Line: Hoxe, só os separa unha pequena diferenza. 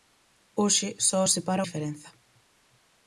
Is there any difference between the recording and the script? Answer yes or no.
yes